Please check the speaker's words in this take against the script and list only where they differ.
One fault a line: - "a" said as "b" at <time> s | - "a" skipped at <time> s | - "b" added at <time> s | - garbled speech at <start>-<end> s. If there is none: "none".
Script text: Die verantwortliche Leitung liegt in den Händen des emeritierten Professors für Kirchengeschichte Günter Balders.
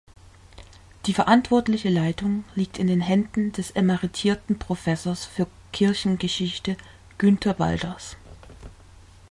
none